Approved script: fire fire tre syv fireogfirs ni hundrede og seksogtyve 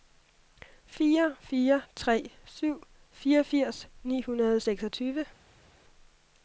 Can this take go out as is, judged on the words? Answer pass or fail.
pass